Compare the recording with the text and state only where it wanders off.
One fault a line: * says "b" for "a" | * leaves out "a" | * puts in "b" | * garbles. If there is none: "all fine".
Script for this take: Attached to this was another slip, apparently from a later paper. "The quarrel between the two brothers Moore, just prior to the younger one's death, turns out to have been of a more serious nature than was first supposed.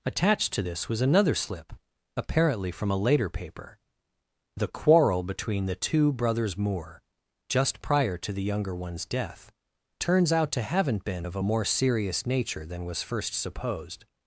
* says "haven't" for "have"